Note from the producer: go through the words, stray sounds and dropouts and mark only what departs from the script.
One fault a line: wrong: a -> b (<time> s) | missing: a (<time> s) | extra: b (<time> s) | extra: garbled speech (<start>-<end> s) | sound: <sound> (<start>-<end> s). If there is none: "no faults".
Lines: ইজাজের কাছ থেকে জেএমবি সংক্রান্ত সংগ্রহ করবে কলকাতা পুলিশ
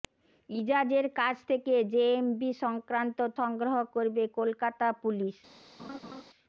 sound: laugh (5.8-6.2 s)